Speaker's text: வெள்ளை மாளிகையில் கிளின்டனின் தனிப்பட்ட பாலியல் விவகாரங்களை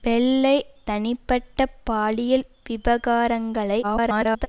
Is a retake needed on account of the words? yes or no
yes